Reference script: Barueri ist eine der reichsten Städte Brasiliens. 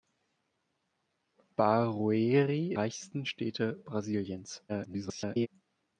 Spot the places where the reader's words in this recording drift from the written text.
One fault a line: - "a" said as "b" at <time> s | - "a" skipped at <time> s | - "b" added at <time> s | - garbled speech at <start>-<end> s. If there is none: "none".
- "ist eine der" skipped at 2.7 s
- garbled speech at 4.7-5.5 s